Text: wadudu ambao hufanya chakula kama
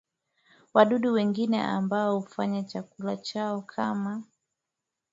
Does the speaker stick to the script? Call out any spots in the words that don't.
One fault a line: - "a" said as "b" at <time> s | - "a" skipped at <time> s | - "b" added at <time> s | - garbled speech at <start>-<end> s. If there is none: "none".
- "wengine" added at 1.1 s
- "chao" added at 3.2 s